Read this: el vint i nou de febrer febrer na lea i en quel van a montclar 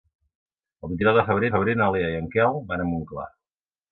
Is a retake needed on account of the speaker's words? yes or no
no